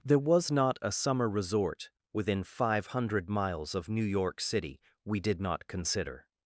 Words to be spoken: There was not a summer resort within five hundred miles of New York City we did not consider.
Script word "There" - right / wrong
right